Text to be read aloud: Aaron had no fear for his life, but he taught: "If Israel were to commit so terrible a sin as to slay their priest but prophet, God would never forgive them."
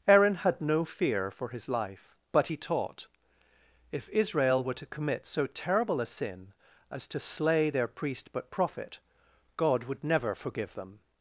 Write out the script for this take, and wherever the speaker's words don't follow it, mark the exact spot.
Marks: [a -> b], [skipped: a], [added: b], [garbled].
Aaron had no fear for his life, but he taught: "If Israel were to commit so terrible a sin as to slay their priest but prophet, God would never forgive them."